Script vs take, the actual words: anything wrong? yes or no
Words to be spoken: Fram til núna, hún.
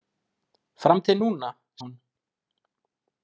no